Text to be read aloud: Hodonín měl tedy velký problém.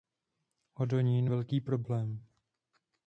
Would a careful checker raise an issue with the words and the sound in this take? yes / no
yes